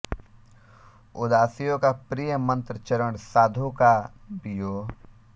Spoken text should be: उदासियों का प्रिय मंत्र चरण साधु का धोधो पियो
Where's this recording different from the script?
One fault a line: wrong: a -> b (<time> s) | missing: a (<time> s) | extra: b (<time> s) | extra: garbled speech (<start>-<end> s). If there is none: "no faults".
missing: धोधो (3.9 s)